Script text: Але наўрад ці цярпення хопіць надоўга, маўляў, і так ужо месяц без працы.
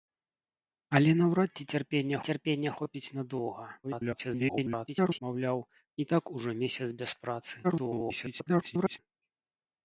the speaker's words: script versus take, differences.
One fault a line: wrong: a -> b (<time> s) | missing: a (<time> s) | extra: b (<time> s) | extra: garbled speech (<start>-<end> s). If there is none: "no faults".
extra: цярпення (2.3 s)
extra: garbled speech (3.8-5.2 s)
extra: garbled speech (7.6-9.0 s)